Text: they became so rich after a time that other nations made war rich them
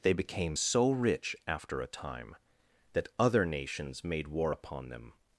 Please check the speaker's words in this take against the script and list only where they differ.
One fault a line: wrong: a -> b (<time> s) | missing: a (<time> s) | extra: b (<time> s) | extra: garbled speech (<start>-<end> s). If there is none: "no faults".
wrong: rich -> upon (4.5 s)